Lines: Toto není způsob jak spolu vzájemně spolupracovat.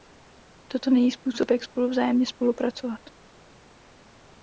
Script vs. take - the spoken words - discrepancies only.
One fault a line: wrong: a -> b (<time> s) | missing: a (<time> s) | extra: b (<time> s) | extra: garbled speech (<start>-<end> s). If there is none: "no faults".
no faults